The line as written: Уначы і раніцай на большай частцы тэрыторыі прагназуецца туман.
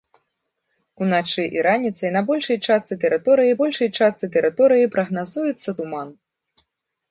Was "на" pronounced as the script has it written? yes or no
yes